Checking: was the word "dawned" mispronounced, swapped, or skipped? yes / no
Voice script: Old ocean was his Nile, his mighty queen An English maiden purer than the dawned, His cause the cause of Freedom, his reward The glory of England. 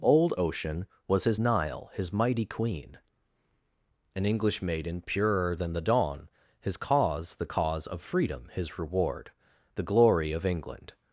yes